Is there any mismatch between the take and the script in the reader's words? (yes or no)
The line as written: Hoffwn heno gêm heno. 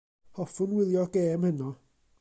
yes